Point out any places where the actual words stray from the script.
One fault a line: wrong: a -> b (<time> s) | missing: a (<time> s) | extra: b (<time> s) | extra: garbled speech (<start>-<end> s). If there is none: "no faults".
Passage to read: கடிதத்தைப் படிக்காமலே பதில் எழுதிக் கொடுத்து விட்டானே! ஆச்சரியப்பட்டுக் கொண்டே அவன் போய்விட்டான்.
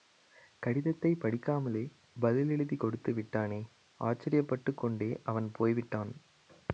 no faults